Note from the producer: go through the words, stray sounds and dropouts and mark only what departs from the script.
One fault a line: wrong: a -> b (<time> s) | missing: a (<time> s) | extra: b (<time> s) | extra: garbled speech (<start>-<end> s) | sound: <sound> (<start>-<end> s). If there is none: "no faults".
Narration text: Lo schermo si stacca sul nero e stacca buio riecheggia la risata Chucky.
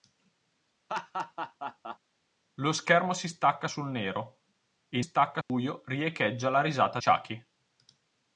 sound: laugh (0.9-2.0 s)
sound: dropout (5.4-5.5 s)